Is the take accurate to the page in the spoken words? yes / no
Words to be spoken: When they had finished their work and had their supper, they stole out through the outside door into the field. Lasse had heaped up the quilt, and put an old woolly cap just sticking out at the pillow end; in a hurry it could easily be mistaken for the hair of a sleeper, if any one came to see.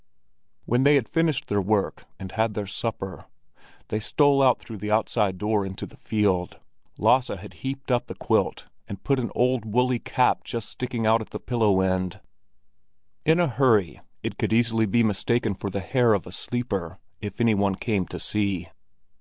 yes